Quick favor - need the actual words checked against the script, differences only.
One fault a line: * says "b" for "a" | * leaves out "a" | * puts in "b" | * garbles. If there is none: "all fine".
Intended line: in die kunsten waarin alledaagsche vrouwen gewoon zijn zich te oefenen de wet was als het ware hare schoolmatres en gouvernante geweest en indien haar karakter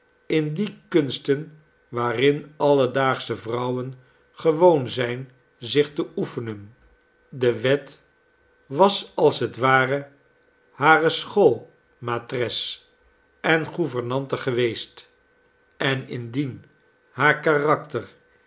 all fine